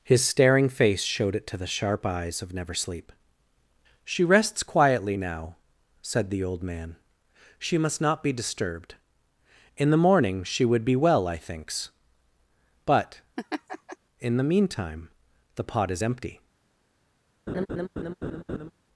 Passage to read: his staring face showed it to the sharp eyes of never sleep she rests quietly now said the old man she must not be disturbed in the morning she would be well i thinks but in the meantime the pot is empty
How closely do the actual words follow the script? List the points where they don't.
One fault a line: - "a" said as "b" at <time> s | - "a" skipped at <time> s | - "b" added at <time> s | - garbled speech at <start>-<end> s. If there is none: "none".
none